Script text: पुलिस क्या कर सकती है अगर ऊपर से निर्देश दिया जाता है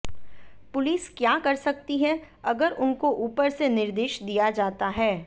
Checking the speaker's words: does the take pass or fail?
fail